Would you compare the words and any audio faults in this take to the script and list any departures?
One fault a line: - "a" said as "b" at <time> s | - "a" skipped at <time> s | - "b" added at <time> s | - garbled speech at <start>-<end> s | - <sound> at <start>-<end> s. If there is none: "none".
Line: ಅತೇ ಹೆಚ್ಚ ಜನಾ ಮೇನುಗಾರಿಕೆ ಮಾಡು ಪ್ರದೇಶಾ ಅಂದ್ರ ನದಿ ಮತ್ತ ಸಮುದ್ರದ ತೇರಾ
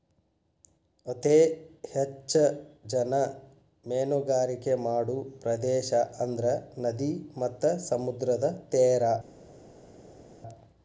none